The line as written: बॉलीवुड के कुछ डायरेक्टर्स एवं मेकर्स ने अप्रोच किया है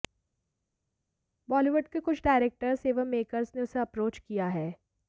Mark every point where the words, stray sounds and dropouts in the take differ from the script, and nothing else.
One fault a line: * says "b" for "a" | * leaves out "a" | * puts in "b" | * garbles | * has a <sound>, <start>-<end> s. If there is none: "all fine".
* puts in "उसे"